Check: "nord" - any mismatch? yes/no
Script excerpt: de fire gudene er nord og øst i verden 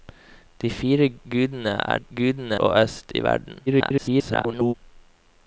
yes